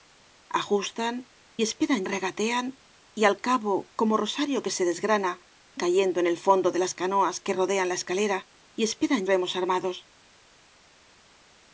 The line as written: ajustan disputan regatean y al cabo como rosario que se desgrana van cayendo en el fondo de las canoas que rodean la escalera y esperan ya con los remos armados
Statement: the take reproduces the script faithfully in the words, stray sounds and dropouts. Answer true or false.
false